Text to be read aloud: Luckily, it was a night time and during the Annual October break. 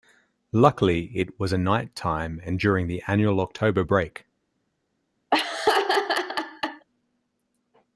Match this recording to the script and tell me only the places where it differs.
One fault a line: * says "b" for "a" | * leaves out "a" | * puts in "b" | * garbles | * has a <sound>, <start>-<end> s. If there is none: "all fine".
* has a laugh, 5.3-6.9 s